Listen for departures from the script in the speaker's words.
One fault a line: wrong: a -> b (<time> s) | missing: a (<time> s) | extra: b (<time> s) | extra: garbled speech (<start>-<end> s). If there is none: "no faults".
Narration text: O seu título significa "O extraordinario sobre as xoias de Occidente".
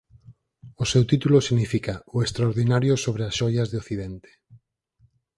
no faults